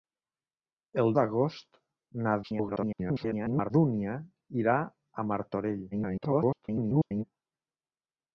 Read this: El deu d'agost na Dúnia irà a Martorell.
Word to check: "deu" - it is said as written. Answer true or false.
false